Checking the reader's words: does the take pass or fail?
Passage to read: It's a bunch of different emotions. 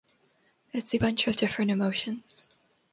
pass